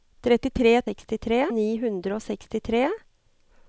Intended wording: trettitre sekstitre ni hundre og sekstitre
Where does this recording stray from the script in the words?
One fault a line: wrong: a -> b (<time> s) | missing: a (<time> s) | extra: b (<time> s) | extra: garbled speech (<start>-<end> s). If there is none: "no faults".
no faults